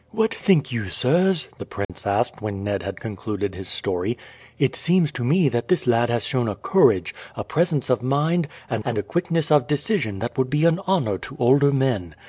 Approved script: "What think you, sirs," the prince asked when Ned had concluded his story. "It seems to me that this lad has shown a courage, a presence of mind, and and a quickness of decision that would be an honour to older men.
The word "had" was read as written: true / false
true